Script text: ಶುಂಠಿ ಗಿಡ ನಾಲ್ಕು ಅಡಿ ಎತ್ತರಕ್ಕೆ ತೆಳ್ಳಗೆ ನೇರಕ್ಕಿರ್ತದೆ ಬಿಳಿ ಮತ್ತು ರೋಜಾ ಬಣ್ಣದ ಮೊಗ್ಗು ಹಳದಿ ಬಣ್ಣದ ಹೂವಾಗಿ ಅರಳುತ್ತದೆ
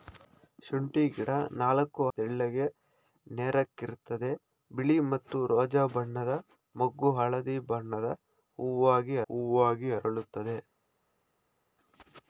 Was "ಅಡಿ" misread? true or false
true